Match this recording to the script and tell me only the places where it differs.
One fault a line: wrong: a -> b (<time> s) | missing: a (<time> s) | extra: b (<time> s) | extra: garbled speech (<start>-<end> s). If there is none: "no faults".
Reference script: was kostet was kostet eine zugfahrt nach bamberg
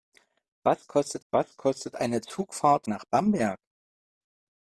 no faults